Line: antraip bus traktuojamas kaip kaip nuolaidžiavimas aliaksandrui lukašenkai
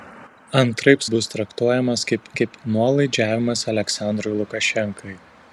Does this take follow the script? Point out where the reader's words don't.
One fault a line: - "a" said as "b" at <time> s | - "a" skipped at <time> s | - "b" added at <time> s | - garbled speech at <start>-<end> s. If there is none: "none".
none